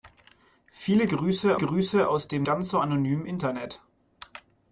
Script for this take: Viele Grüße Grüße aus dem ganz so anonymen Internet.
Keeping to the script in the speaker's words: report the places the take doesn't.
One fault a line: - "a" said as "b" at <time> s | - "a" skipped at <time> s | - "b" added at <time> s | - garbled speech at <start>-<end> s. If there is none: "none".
none